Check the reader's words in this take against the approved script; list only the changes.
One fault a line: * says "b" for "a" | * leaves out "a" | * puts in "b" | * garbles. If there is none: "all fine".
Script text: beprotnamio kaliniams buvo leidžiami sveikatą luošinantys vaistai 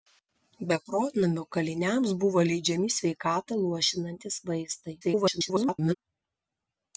* garbles